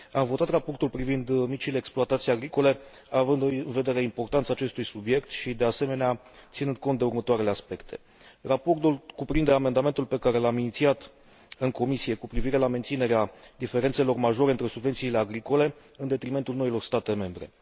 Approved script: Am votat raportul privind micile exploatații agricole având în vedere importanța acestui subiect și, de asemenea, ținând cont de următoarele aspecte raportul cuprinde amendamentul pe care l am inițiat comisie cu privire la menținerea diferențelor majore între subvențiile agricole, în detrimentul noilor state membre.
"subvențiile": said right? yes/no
yes